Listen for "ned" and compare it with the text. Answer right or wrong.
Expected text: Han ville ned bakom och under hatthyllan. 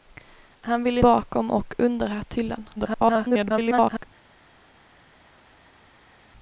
wrong